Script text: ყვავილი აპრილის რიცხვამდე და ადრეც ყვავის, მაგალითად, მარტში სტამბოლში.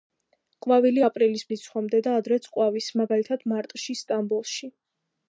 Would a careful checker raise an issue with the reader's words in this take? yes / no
no